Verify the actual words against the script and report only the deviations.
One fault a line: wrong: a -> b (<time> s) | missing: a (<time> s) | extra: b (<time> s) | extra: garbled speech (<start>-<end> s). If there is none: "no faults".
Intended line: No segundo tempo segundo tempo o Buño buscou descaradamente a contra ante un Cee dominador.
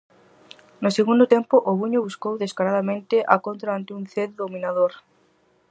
missing: segundo tempo (1.5 s)